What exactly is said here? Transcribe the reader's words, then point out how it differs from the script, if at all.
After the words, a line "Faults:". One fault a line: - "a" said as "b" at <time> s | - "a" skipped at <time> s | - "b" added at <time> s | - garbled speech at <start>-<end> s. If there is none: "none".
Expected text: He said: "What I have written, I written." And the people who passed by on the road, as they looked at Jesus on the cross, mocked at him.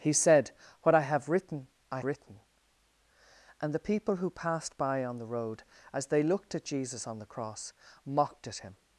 He said: "What I have written, I written." And the people who passed by on the road, as they looked at Jesus on the cross, mocked at him.
Faults:
none